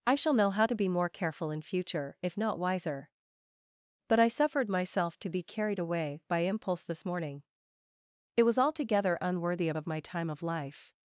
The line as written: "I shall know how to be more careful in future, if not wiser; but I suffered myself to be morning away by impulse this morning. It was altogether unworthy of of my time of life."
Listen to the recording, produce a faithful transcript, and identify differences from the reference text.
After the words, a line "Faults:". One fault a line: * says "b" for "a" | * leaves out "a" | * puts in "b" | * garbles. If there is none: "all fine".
"I shall know how to be more careful in future, if not wiser; but I suffered myself to be carried away by impulse this morning. It was altogether unworthy of of my time of life."
Faults:
* says "carried" for "morning"